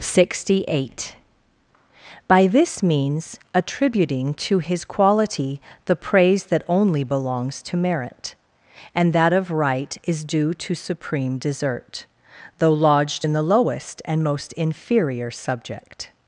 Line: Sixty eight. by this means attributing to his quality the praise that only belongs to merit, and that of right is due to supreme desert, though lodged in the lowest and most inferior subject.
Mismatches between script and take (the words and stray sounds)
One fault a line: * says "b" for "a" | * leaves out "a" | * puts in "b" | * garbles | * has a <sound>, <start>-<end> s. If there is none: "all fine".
all fine